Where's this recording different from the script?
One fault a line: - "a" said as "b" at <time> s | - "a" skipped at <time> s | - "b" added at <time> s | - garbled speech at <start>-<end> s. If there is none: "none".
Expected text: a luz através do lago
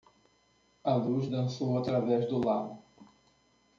- "dançou" added at 1.3 s